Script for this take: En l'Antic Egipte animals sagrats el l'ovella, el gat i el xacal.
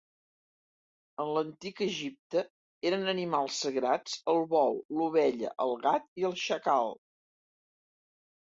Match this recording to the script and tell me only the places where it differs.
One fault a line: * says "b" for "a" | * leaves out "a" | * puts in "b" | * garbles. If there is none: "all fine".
* puts in "eren"
* puts in "bou"